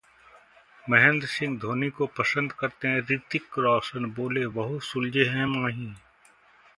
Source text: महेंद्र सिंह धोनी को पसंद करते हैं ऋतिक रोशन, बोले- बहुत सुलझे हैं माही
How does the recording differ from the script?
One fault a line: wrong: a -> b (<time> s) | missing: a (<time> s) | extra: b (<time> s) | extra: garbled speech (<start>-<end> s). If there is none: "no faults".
no faults